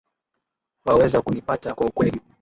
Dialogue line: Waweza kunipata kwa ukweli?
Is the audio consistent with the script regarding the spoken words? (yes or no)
yes